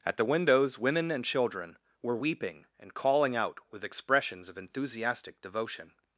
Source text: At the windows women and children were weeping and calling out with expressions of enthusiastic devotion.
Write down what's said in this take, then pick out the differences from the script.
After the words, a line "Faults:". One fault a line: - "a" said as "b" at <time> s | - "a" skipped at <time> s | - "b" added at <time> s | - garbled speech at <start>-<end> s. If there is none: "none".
At the windows women and children were weeping and calling out with expressions of enthusiastic devotion.
Faults:
none